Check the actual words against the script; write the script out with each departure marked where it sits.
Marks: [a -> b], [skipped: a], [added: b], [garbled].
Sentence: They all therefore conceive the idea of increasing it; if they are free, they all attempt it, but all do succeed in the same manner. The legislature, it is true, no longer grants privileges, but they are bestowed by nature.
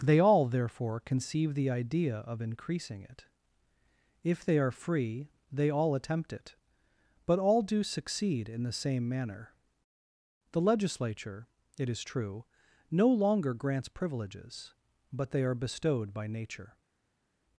They all therefore conceive the idea of increasing it; if they are free, they all attempt it, but all do succeed in the same manner. The legislature, it is true, no longer grants privileges, but they are bestowed by nature.